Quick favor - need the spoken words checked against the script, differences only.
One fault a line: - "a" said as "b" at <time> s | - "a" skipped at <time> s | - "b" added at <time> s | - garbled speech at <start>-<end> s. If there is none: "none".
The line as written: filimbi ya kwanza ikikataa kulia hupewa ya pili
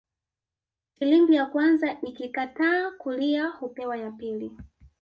none